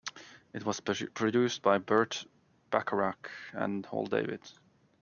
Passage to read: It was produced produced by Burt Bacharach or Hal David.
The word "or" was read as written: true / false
false